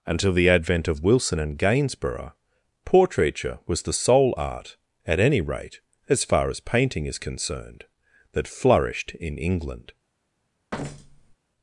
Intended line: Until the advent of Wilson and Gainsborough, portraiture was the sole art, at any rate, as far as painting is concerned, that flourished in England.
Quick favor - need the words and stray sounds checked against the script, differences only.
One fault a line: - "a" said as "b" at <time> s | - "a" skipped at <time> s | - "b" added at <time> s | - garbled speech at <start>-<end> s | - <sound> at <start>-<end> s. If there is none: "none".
- thud at 10.7-11.4 s